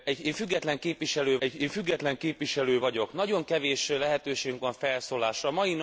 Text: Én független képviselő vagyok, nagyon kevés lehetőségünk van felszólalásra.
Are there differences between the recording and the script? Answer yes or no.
yes